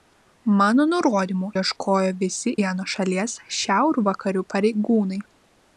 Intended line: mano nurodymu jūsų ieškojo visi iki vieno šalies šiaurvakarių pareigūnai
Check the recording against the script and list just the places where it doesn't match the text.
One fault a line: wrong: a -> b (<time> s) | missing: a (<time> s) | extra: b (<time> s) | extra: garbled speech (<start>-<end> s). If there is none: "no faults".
missing: jūsų (1.5 s)
missing: iki (2.5 s)